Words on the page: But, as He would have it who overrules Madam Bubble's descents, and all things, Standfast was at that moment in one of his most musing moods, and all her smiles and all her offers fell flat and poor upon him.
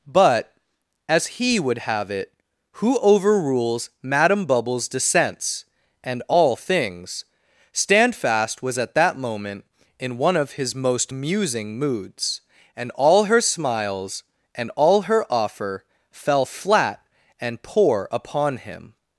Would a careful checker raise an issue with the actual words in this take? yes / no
yes